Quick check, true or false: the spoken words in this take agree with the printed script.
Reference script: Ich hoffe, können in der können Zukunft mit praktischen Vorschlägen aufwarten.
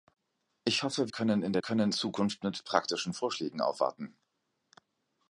true